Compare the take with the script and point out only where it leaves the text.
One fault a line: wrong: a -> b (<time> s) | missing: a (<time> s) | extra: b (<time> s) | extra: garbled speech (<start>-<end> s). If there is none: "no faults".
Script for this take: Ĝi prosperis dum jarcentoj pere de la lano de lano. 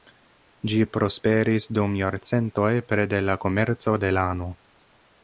wrong: lano -> komerco (3.5 s)